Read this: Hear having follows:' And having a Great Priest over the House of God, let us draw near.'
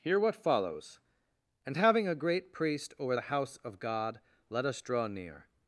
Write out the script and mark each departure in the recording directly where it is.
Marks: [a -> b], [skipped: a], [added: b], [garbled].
Hear [having -> what] follows:' And having a Great Priest over the House of God, let us draw near.'